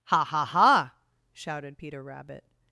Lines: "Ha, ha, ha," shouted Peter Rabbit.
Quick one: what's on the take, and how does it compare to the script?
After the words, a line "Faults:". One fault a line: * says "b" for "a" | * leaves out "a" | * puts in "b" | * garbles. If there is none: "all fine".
"Ha, ha, ha," shouted Peter Rabbit.
Faults:
all fine